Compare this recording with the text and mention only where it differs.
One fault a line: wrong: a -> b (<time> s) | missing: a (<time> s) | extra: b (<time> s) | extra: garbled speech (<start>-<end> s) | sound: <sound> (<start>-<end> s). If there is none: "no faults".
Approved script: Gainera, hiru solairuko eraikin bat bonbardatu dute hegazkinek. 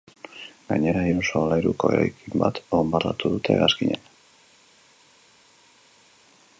no faults